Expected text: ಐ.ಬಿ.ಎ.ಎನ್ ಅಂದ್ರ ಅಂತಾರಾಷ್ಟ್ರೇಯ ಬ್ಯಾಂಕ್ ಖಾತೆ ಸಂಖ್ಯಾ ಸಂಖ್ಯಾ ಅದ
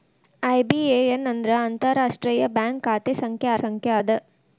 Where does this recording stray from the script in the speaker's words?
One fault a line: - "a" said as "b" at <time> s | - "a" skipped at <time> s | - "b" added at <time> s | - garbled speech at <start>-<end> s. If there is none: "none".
none